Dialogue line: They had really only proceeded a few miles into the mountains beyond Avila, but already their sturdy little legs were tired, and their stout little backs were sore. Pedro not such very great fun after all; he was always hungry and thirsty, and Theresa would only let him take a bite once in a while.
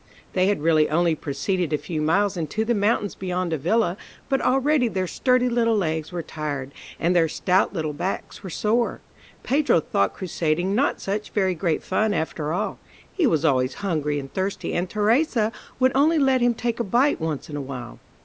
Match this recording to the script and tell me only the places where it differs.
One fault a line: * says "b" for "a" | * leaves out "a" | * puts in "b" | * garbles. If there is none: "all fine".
* puts in "thought crusading"